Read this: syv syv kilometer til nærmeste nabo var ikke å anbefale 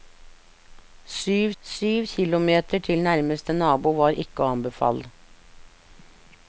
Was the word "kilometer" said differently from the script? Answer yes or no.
no